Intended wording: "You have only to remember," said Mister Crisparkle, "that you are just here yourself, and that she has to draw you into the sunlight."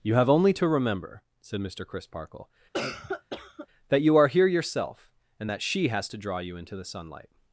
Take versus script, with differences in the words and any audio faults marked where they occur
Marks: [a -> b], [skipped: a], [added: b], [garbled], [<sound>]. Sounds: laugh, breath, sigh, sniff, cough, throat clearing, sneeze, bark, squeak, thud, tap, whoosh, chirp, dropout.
"You have only to remember," said Mister Crisparkle, [cough] "that you are [skipped: just] here yourself, and that she has to draw you into the sunlight."